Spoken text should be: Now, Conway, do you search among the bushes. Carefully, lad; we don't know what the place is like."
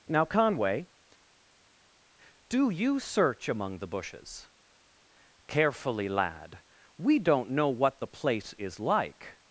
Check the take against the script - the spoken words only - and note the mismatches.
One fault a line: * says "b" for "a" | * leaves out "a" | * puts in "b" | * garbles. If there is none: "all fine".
all fine